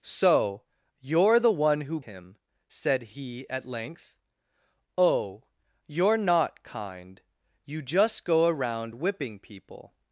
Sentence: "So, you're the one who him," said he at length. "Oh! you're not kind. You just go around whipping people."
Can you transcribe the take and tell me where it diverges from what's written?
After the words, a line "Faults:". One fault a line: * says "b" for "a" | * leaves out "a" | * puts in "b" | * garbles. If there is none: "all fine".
"So, you're the one who him," said he at length. "Oh! you're not kind. You just go around whipping people."
Faults:
all fine